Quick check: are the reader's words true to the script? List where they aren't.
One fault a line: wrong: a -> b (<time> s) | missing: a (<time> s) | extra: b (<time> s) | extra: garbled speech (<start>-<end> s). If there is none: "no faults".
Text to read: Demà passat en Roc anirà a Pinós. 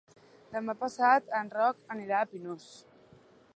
no faults